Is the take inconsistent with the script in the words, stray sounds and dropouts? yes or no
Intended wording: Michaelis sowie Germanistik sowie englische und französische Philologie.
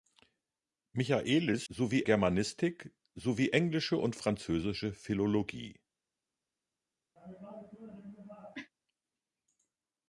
yes